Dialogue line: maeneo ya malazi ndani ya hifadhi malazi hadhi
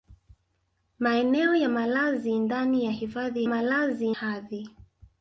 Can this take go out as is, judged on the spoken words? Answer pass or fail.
pass